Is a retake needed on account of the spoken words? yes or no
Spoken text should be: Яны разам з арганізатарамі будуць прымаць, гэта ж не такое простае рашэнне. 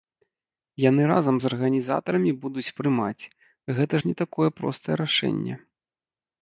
no